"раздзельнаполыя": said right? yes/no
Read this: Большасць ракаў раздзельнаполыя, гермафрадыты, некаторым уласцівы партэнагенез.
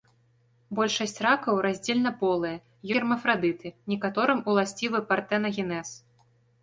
yes